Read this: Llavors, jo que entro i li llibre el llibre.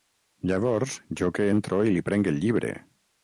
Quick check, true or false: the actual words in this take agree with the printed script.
false